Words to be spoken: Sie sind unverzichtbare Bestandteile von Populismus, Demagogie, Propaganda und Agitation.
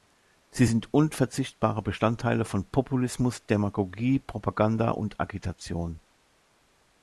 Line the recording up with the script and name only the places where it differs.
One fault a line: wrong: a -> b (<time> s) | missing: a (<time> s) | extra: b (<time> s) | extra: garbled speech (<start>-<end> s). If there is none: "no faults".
no faults